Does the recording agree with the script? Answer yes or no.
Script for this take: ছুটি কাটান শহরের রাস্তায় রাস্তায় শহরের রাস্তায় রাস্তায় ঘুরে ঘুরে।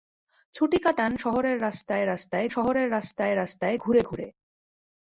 yes